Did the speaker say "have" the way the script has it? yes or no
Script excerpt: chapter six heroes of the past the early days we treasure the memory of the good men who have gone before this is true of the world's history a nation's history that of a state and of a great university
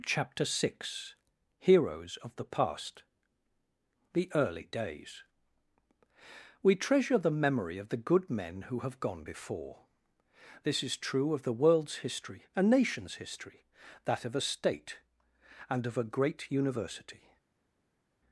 yes